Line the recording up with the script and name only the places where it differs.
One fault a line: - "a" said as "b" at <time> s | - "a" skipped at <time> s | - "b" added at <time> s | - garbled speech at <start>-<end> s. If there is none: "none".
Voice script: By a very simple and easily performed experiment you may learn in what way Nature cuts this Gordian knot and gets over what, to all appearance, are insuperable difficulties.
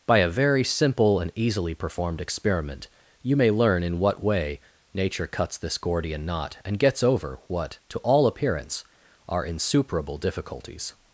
none